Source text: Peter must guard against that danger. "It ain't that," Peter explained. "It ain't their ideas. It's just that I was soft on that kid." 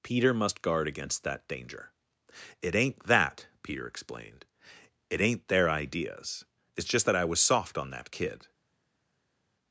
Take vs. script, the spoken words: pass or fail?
pass